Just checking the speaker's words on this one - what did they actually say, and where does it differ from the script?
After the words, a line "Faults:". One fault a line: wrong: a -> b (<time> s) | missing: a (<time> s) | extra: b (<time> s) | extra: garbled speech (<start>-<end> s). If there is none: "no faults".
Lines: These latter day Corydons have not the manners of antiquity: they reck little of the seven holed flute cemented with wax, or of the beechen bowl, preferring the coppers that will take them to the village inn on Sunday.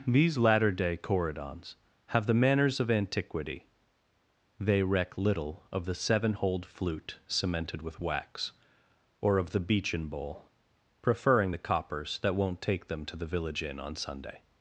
These latter day Corydons have the manners of antiquity: they reck little of the seven holed flute cemented with wax, or of the beechen bowl, preferring the coppers that won't take them to the village inn on Sunday.
Faults:
missing: not (2.2 s)
wrong: will -> won't (12.3 s)